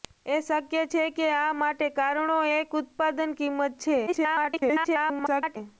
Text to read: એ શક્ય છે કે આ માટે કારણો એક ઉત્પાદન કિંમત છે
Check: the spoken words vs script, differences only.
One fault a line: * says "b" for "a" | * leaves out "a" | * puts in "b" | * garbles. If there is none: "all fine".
* garbles